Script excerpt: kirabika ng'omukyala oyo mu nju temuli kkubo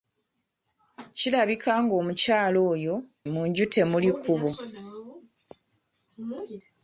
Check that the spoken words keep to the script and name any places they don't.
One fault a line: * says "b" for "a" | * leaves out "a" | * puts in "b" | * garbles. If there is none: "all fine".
all fine